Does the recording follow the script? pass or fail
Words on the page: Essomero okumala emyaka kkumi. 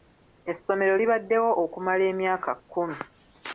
fail